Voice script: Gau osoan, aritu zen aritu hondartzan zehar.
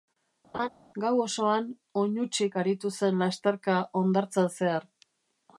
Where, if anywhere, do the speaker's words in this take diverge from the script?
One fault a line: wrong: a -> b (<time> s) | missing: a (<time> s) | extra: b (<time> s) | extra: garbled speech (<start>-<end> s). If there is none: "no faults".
extra: oinutsik (2.0 s)
wrong: aritu -> lasterka (3.2 s)